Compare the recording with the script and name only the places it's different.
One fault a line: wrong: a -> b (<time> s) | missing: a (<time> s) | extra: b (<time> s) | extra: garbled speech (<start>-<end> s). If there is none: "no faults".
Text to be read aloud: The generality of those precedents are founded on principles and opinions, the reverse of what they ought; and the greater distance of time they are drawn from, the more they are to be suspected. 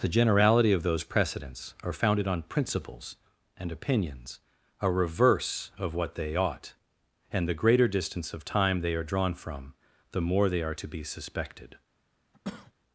wrong: the -> a (4.8 s)